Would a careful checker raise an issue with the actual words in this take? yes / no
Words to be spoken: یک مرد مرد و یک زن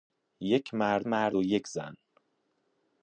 no